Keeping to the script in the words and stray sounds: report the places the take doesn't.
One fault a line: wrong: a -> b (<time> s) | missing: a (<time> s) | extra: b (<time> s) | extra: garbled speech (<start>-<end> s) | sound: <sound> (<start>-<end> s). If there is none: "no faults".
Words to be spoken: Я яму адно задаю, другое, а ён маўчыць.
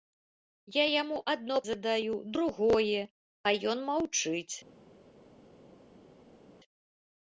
no faults